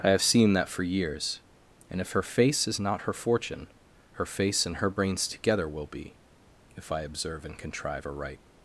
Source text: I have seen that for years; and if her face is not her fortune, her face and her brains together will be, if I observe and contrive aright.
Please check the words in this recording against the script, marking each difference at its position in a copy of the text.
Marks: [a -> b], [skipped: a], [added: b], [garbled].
I have seen that for years; and if her face is not her fortune, her face and her brains together will be, if I observe and contrive aright.